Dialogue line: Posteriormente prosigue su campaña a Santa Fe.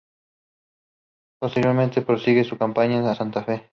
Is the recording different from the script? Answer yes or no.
no